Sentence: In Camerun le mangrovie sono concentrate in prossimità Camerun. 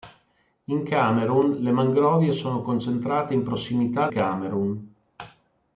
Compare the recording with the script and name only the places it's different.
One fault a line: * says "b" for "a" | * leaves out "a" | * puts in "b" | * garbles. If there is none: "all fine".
all fine